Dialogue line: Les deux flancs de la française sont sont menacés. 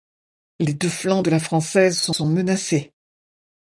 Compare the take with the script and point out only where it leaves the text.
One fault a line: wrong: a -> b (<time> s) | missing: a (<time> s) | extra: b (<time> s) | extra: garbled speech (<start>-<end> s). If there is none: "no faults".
no faults